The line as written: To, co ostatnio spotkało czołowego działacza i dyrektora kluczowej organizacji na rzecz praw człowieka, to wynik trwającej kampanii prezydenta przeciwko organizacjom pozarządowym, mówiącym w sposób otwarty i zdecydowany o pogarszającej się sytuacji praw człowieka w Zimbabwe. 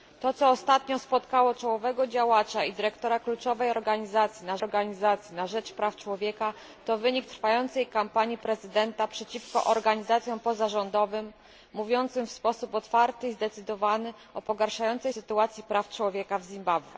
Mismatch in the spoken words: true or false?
true